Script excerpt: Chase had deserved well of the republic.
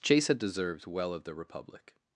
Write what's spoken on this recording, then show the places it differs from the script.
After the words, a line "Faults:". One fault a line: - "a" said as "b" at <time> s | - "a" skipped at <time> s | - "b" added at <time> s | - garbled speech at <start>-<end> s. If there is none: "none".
Chase had deserved well of the republic.
Faults:
none